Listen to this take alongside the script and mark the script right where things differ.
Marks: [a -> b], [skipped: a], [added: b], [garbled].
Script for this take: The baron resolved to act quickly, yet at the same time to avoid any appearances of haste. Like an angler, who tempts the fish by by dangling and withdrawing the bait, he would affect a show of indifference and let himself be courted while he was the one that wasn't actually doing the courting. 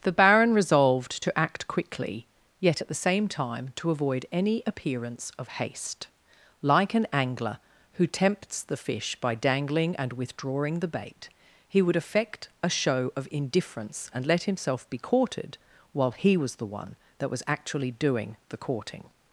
The baron resolved to act quickly, yet at the same time to avoid any [appearances -> appearance] of haste. Like an angler, who tempts the fish by [skipped: by] dangling and withdrawing the bait, he would affect a show of indifference and let himself be courted while he was the one that [wasn't -> was] actually doing the courting.